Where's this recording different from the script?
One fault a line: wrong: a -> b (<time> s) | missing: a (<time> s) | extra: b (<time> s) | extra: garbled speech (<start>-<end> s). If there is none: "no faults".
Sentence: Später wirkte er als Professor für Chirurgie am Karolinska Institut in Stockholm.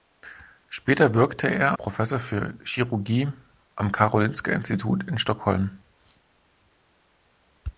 missing: als (1.8 s)